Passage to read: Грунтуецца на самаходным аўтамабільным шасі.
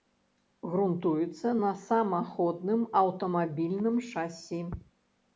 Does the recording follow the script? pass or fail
pass